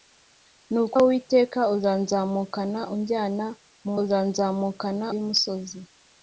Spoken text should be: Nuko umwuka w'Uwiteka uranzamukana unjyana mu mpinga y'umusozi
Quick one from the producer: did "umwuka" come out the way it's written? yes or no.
no